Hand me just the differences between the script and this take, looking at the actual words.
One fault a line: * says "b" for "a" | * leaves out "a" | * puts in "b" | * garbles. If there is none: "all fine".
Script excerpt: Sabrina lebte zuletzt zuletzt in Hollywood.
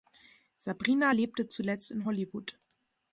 * leaves out "zuletzt"